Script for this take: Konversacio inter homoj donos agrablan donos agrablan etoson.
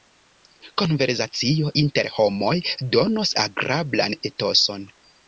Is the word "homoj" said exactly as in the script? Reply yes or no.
yes